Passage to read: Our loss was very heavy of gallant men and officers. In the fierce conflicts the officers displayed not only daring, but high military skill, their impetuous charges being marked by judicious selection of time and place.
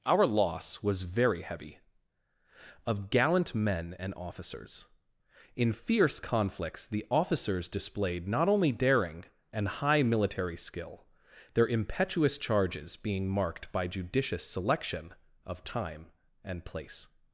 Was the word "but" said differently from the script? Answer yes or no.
yes